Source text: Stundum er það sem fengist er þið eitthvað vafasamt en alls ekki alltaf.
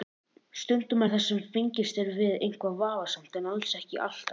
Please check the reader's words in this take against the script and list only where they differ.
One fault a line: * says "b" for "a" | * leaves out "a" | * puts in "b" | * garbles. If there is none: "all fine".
* says "við" for "þið"